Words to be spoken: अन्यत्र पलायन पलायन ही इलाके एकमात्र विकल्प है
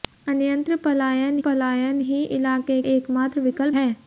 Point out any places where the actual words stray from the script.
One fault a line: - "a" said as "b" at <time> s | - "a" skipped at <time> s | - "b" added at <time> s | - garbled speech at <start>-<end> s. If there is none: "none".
none